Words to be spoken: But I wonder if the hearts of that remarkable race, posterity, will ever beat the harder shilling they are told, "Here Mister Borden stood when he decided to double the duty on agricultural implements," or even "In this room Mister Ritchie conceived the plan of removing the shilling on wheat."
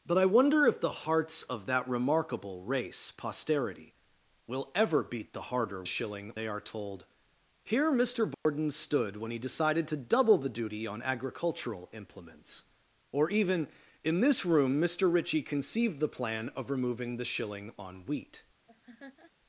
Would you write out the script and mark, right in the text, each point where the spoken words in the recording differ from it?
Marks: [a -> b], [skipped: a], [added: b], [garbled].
But I wonder if the hearts of that remarkable race, posterity, will ever beat the harder shilling they are told, "Here Mister Borden stood when he decided to double the duty on agricultural implements," or even "In this room Mister Ritchie conceived the plan of removing the shilling on wheat."